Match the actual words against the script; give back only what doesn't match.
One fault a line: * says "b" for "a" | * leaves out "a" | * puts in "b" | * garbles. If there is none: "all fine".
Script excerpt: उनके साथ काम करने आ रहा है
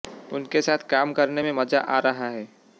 * puts in "में मजा"